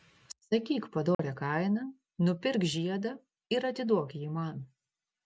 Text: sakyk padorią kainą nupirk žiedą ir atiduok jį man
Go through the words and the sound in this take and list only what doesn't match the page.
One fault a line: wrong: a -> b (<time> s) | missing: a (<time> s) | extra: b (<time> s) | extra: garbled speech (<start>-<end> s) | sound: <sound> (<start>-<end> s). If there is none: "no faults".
sound: dropout (1.1-1.2 s)